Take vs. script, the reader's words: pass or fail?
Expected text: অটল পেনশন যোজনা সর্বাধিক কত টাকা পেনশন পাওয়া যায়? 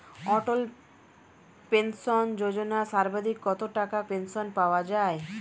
pass